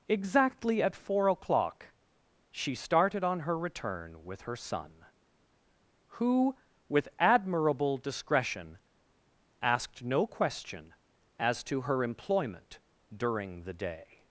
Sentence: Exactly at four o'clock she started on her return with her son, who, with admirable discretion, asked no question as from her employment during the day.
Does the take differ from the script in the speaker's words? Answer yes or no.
yes